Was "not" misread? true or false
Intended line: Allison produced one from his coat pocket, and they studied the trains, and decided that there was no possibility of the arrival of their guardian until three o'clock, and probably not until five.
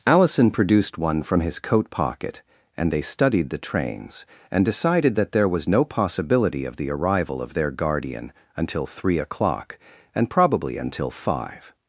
true